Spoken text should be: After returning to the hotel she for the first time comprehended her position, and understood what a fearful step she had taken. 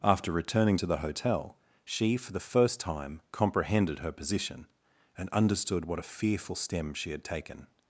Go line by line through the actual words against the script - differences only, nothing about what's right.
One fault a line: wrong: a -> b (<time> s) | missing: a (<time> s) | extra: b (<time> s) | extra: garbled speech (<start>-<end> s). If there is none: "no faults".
wrong: step -> stem (6.6 s)